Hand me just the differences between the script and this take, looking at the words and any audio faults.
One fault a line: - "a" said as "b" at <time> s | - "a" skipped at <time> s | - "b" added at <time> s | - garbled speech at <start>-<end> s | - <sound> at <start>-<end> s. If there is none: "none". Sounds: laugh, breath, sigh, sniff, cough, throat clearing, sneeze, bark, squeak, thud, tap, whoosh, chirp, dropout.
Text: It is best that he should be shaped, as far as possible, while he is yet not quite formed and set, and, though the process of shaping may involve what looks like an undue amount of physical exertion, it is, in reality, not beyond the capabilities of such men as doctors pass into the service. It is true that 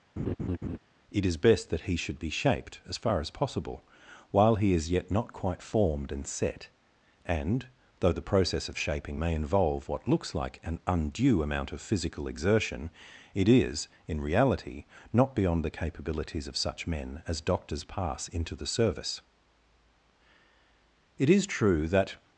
- laugh at 0.2-0.8 s